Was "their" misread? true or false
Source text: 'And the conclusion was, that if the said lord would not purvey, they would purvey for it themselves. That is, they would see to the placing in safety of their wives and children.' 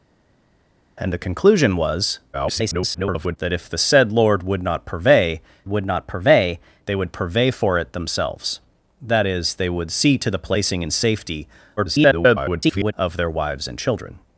false